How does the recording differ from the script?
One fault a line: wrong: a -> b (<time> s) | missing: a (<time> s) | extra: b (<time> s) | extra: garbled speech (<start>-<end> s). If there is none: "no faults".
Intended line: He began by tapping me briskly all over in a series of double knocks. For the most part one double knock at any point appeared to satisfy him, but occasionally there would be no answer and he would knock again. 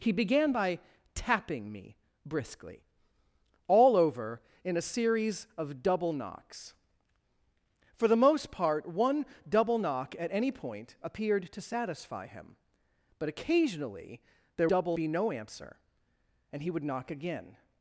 wrong: would -> double (14.7 s)